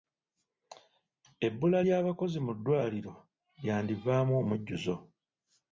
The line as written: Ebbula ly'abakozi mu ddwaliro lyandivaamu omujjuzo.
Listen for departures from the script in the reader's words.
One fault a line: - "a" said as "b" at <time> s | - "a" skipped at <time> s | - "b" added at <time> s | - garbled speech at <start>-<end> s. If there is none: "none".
none